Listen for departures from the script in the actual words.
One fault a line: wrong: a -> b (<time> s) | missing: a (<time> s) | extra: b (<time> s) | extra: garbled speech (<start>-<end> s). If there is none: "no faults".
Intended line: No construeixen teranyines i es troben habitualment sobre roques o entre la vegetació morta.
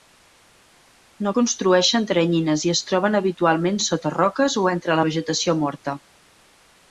wrong: sobre -> sota (3.9 s)